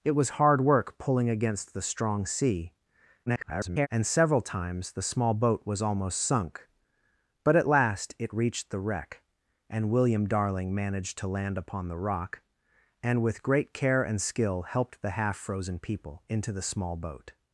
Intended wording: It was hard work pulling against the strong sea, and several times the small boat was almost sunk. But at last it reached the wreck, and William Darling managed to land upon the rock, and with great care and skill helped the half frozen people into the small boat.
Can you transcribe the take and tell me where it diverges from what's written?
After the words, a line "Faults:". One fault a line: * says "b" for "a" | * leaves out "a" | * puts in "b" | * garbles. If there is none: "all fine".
It was hard work pulling against the strong sea, [garbled] and several times the small boat was almost sunk. But at last it reached the wreck, and William Darling managed to land upon the rock, and with great care and skill helped the half frozen people into the small boat.
Faults:
* garbles